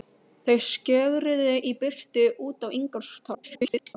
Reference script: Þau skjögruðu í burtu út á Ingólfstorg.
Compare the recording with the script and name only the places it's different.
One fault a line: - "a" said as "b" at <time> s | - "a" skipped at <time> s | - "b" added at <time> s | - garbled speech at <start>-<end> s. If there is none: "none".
- garbled speech at 3.3-4.0 s